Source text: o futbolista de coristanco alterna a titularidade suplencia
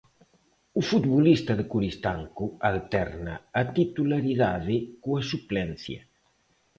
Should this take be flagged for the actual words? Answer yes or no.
yes